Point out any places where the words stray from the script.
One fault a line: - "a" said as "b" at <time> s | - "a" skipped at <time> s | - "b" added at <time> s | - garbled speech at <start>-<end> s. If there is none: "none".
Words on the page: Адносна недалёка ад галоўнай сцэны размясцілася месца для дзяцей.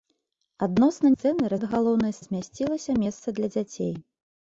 - "недалёка" said as "сцэны" at 1.1 s
- "сцэны" skipped at 2.2 s